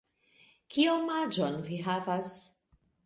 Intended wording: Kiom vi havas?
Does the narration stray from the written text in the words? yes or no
yes